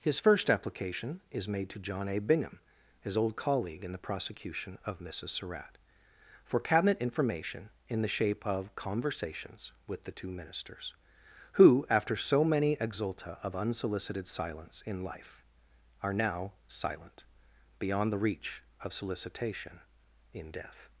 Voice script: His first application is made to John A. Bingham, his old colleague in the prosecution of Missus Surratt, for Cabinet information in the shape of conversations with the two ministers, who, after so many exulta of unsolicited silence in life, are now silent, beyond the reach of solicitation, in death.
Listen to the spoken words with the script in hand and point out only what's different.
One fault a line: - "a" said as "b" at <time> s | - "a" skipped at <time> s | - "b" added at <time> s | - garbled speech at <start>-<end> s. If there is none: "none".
none